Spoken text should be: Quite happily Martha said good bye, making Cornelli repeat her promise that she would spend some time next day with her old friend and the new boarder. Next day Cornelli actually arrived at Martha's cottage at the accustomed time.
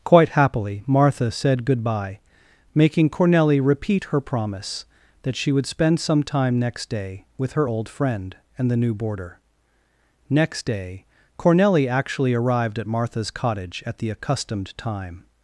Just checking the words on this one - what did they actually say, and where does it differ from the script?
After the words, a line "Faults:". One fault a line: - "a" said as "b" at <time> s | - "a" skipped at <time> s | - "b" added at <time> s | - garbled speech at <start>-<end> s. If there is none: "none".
Quite happily Martha said good bye, making Cornelli repeat her promise that she would spend some time next day with her old friend and the new boarder. Next day Cornelli actually arrived at Martha's cottage at the accustomed time.
Faults:
none